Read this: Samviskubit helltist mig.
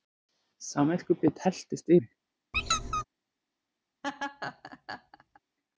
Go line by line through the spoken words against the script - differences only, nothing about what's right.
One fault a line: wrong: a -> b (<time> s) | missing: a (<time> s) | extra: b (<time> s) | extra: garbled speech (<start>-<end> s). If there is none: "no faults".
no faults